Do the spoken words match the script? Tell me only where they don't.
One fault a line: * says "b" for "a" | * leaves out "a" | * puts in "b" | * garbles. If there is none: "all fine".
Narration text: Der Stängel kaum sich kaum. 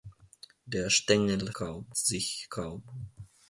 all fine